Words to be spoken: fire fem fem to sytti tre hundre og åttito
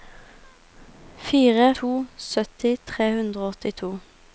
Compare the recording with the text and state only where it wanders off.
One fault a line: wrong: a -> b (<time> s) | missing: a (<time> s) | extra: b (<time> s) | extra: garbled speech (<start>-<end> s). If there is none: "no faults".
missing: fem fem (1.8 s)